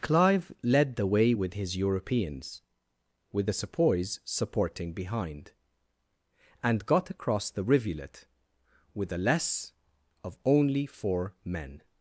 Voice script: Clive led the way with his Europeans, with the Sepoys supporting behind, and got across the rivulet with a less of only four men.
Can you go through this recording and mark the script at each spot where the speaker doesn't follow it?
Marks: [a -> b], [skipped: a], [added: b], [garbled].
Clive led the way with his Europeans, with the Sepoys supporting behind, and got across the rivulet with a less of only four men.